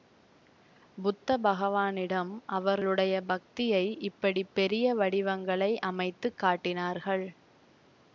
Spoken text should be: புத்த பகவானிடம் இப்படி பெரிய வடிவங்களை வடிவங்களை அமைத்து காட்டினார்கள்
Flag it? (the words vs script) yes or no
yes